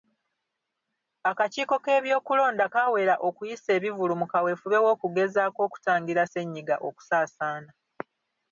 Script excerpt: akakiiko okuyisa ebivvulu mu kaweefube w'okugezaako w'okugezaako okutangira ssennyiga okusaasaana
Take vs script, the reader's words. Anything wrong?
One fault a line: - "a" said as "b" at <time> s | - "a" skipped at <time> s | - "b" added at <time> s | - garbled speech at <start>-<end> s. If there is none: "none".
- "k'ebyokulonda kaawera" added at 1.8 s
- "w'okugezaako" skipped at 5.6 s